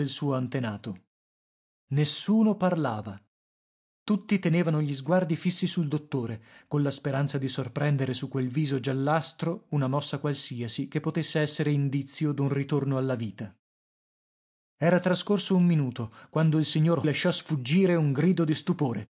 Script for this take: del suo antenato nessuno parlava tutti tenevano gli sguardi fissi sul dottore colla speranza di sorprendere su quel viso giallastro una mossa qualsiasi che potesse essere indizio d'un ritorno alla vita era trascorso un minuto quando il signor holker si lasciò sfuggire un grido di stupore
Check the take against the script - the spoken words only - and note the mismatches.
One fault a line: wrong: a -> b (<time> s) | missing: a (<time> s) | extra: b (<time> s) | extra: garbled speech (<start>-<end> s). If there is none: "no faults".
missing: holker si (17.1 s)